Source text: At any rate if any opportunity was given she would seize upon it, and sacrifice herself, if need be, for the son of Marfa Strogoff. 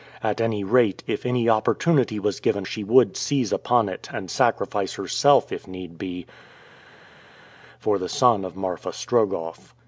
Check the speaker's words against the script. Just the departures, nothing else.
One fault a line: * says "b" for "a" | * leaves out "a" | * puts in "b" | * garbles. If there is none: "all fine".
all fine